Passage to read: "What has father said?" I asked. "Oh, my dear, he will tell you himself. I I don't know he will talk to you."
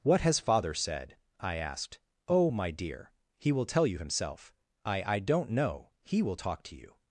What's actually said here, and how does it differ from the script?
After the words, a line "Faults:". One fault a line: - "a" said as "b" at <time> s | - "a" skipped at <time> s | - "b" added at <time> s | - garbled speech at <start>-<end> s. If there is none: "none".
"What has father said?" I asked. "Oh, my dear, he will tell you himself. I I don't know he will talk to you."
Faults:
none